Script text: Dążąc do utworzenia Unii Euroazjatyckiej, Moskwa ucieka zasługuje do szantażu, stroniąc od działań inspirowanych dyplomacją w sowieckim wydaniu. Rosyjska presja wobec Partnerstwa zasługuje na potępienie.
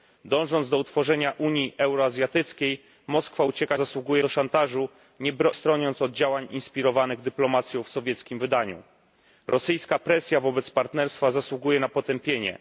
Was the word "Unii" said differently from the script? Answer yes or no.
no